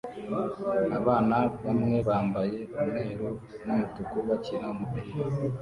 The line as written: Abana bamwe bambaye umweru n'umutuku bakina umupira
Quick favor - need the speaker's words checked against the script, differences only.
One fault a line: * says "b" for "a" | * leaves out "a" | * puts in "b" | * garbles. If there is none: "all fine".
all fine